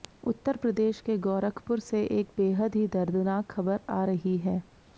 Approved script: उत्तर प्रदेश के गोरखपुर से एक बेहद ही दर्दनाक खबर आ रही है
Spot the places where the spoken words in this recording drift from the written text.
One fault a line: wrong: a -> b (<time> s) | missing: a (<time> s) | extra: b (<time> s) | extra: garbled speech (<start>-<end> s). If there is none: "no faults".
no faults